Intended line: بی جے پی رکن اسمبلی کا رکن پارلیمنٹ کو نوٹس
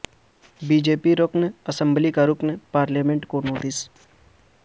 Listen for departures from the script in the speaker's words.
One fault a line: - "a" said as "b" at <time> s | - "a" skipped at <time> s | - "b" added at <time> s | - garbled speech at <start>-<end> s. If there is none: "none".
none